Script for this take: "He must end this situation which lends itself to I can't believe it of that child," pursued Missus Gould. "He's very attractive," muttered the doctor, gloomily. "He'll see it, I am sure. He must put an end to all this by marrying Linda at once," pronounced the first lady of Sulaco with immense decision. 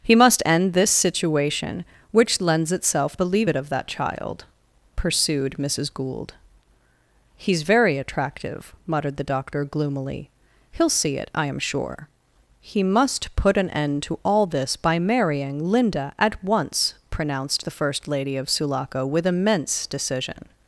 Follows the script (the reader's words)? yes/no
no